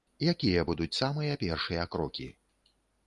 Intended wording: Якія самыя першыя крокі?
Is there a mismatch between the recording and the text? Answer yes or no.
yes